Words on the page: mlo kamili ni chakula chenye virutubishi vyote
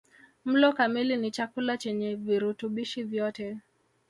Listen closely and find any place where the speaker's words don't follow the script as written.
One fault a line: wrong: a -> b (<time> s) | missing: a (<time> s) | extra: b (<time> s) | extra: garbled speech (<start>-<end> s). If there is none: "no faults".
no faults